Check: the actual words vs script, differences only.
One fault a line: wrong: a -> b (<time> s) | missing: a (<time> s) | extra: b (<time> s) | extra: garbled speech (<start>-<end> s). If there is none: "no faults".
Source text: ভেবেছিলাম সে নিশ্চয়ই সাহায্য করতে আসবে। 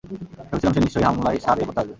extra: হামলায় (1.1 s)